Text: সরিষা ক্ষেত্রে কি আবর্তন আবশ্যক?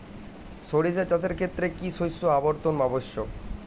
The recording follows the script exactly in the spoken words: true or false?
false